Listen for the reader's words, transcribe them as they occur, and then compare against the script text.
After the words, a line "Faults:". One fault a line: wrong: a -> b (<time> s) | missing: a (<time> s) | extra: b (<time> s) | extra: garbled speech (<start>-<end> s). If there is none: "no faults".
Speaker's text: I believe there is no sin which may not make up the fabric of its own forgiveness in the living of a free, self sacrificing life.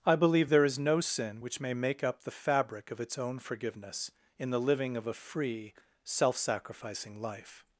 I believe there is no sin which may make up the fabric of its own forgiveness in the living of a free, self sacrificing life.
Faults:
missing: not (1.7 s)